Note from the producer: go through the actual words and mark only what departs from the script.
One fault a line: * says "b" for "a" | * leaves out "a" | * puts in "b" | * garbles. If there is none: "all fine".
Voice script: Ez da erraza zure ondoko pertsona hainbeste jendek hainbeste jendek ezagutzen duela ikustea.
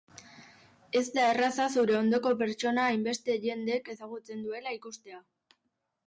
* leaves out "hainbeste jendek"